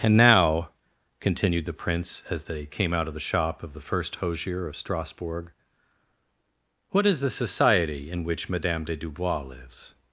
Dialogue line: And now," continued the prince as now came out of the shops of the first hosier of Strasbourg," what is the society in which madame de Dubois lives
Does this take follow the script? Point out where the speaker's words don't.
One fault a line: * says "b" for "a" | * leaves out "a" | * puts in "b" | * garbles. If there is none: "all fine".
* says "they" for "now"
* says "shop" for "shops"